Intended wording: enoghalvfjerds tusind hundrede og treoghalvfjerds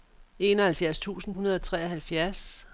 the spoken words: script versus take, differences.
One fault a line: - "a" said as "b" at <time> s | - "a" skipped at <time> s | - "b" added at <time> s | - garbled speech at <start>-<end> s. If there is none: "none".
none